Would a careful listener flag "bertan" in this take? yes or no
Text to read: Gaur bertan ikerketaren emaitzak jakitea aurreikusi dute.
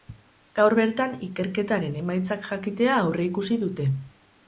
no